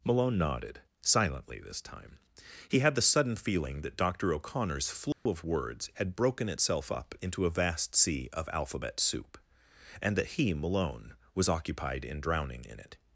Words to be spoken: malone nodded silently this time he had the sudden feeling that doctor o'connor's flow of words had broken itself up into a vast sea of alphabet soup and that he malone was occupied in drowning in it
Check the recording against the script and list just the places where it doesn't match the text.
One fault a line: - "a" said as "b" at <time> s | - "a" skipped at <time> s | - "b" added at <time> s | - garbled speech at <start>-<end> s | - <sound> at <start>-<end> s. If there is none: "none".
- dropout at 5.1-5.3 s